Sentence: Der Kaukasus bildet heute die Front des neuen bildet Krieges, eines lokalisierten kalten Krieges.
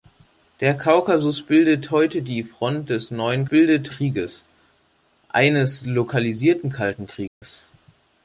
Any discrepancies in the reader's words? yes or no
no